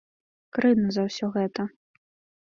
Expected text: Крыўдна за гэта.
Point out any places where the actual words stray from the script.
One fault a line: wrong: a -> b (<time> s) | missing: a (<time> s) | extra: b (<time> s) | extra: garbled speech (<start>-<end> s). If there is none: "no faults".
extra: ўсё (1.1 s)